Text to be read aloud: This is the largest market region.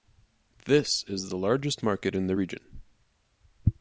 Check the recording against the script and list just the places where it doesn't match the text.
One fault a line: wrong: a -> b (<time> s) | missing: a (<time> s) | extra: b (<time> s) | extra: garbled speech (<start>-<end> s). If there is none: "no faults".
extra: in the (2.1 s)